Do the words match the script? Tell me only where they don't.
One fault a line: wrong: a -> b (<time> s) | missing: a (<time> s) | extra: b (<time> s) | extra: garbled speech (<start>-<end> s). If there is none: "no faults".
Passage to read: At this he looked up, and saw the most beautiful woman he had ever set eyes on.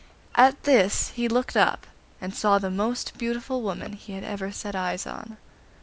no faults